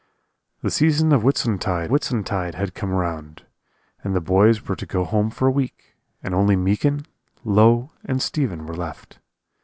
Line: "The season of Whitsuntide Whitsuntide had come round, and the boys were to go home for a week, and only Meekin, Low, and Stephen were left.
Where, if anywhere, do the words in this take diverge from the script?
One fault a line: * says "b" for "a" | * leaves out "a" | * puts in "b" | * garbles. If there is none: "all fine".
all fine